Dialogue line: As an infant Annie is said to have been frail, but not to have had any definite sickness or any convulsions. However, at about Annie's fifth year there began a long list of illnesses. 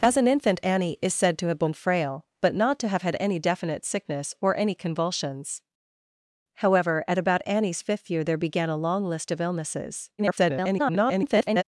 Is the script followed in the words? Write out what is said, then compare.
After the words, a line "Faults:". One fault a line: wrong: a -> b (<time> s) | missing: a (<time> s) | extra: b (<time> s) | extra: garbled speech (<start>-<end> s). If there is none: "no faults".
As an infant Annie is said to have been frail, but not to have had any definite sickness or any convulsions. However, at about Annie's fifth year there began a long list of illnesses. [garbled]
Faults:
extra: garbled speech (10.2-11.6 s)